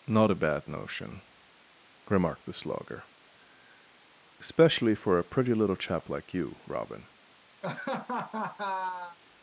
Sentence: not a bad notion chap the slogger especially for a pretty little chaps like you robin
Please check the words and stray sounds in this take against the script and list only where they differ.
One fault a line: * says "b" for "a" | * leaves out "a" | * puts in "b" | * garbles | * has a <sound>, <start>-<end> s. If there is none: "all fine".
* says "remarked" for "chap"
* says "chap" for "chaps"
* has a laugh, 7.6-9.2 s